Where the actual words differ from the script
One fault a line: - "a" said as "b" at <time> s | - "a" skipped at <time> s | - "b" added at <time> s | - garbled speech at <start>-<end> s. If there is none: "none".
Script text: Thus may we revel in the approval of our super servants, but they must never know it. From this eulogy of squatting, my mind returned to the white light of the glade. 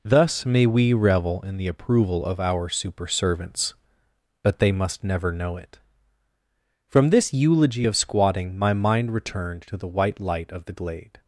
none